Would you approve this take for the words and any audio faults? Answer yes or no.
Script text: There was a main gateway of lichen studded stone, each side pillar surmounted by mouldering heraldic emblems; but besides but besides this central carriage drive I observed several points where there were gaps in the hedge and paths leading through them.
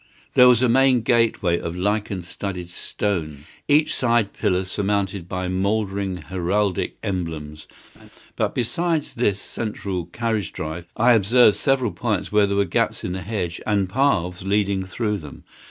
no